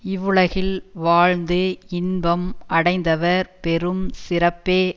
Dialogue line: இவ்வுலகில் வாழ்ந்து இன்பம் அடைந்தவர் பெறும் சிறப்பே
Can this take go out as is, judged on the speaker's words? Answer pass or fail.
pass